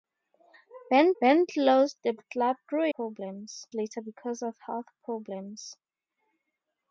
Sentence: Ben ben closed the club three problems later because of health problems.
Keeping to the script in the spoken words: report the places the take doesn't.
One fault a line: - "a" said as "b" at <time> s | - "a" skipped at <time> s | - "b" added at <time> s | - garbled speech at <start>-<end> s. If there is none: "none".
none